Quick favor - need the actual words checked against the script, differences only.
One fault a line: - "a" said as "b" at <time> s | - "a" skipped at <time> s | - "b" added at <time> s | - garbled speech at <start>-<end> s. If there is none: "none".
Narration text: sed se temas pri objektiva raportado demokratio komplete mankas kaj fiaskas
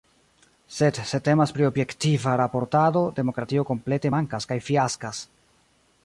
none